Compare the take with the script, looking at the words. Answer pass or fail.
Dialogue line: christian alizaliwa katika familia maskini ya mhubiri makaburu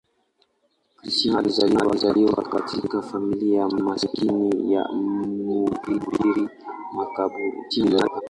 fail